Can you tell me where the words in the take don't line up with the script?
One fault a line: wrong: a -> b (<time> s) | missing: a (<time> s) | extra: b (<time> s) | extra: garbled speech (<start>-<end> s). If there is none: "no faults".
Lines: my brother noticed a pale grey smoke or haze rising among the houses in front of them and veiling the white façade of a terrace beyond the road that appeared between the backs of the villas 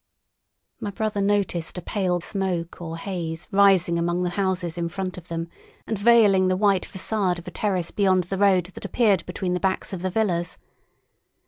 missing: grey (2.2 s)